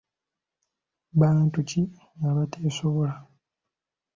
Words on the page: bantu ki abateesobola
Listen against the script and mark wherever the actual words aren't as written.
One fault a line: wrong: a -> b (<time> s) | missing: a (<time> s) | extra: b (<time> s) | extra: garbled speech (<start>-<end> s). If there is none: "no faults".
no faults